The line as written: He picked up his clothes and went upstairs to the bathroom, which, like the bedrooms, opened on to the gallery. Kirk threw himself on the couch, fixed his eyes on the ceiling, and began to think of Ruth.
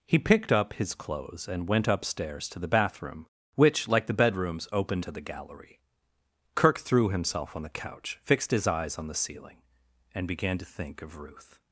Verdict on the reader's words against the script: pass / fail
fail